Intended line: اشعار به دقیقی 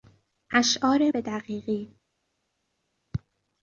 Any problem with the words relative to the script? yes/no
no